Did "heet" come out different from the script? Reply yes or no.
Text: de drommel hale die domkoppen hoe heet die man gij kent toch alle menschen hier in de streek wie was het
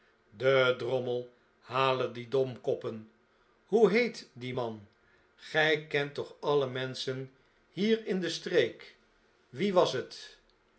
no